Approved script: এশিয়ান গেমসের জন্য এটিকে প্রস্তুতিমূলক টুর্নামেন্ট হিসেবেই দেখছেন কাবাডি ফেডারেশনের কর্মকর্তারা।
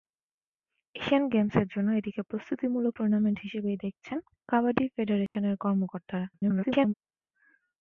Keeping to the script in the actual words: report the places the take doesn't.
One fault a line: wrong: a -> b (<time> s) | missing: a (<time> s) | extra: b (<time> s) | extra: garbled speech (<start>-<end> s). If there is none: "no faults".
extra: garbled speech (6.3-6.9 s)